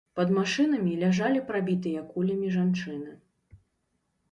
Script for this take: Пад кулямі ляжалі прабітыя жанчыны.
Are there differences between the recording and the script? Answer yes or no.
yes